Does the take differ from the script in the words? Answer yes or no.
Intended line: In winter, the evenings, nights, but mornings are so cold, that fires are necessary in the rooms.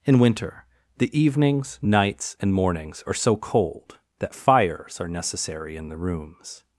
yes